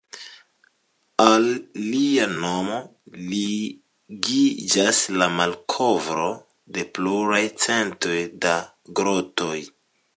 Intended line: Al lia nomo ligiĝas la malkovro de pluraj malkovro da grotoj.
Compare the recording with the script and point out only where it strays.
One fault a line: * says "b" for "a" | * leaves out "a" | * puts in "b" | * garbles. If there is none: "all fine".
* says "centoj" for "malkovro"